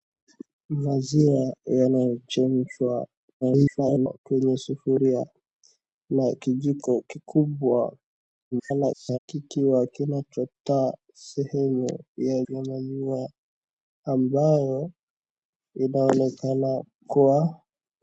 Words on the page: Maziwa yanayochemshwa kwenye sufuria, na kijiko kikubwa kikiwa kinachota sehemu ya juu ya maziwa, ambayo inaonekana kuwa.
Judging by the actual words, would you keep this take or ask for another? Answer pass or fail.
fail